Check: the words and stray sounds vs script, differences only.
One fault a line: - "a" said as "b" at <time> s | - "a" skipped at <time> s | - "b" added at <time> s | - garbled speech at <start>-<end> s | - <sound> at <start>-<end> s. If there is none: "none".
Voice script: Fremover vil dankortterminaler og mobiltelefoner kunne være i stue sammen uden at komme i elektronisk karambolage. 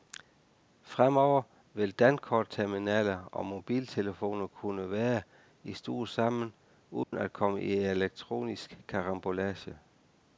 - dropout at 7.0-7.1 s